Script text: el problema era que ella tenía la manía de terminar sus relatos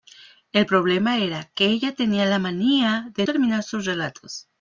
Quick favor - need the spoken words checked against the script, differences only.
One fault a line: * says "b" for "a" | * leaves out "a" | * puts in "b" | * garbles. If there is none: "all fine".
all fine